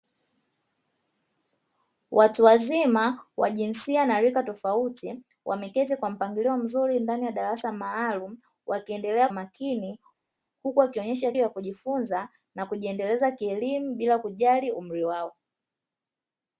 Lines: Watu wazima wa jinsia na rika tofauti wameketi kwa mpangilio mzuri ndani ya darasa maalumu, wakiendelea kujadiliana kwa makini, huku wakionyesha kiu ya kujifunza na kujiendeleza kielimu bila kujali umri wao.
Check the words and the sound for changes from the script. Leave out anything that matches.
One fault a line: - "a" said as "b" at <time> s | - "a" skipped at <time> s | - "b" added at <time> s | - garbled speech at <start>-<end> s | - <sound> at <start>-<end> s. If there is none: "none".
- "kujadiliana kwa" skipped at 9.3 s
- "kiu" skipped at 11.3 s